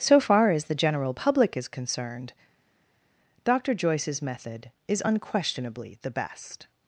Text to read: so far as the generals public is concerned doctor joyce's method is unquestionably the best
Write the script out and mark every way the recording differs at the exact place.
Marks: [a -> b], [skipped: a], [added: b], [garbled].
so far as the [generals -> general] public is concerned doctor joyce's method is unquestionably the best